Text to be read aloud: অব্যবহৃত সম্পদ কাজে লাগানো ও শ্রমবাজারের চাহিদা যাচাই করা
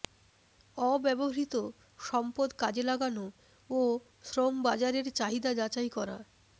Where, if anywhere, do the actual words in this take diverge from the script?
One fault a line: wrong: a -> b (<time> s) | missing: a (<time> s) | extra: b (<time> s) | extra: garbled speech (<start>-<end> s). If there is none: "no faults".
no faults